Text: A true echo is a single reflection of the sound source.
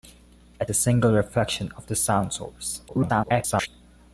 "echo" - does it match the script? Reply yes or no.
no